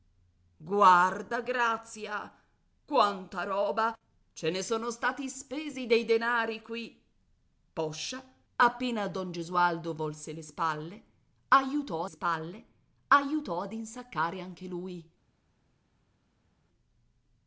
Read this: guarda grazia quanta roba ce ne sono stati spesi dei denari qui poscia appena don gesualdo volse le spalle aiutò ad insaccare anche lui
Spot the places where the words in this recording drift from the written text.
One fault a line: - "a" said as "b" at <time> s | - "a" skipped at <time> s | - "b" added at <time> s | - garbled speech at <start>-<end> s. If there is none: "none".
- "spalle aiutò" added at 12.1 s